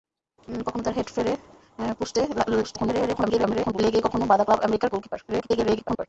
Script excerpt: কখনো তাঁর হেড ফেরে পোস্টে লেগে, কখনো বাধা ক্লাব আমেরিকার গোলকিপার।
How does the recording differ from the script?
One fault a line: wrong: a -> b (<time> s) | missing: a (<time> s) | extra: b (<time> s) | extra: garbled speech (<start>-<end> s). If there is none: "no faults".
extra: garbled speech (2.6-3.8 s)
extra: garbled speech (5.3-6.1 s)